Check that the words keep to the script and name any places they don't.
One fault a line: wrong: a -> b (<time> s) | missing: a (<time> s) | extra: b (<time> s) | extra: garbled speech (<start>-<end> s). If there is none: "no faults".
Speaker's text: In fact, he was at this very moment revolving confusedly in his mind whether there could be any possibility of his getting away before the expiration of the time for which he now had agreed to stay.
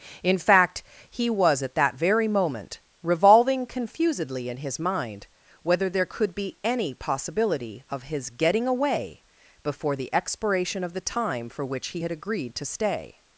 wrong: this -> that (1.8 s)
missing: now (12.0 s)